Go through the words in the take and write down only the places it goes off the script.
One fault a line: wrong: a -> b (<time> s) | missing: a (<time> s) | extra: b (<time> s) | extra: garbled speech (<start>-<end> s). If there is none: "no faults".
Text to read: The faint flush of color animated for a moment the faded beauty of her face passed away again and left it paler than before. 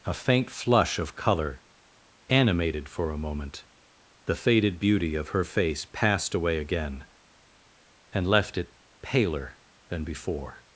wrong: The -> A (0.0 s)